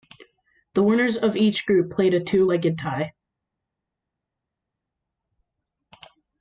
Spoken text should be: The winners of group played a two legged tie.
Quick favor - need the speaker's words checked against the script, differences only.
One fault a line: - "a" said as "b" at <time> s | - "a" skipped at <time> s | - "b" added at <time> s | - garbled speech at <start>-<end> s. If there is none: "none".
- "each" added at 1.4 s